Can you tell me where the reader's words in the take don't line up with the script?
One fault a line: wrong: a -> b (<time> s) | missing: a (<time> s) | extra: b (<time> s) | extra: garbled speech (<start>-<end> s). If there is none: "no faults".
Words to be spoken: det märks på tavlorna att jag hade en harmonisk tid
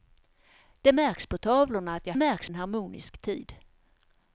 wrong: hade -> märks (2.1 s)